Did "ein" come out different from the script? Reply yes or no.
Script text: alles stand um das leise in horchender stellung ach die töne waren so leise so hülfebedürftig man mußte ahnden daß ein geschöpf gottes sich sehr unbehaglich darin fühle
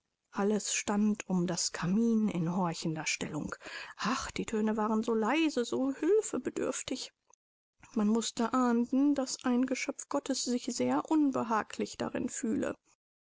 no